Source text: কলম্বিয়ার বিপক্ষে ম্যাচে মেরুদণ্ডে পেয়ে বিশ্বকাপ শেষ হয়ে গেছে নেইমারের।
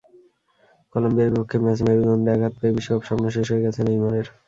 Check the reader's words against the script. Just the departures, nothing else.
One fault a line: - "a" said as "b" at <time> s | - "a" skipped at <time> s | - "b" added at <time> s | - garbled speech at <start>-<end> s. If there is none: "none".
- "আঘাত" added at 2.3 s
- "স্বপ্ন" added at 3.1 s